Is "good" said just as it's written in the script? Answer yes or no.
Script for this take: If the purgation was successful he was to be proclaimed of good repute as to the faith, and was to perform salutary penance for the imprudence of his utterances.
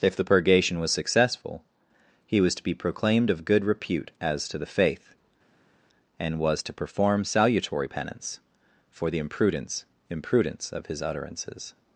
yes